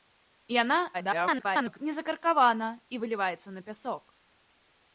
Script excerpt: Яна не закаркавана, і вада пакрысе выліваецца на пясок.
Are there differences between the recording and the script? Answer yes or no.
yes